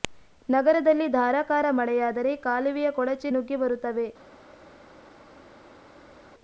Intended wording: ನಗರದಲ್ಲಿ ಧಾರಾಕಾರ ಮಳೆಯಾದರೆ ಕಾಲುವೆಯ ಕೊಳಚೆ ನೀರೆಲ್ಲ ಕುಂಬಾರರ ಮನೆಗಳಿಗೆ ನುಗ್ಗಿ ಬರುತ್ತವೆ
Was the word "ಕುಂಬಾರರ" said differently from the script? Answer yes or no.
yes